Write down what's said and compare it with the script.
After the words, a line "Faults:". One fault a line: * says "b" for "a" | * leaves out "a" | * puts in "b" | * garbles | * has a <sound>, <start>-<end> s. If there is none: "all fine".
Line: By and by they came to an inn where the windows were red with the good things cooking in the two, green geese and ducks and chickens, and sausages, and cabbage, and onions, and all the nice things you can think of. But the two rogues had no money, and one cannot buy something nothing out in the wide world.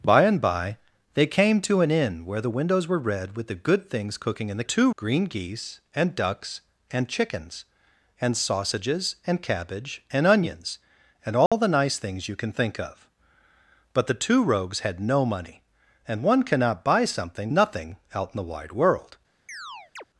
By and by they came to an inn where the windows were red with the good things cooking in the two, green geese and ducks and chickens, and sausages, and cabbage, and onions, and all the nice things you can think of. But the two rogues had no money, and one cannot buy something nothing out in the wide world.
Faults:
* has a dropout, 11.5-11.5 s
* has a chirp, 19.5-20.0 s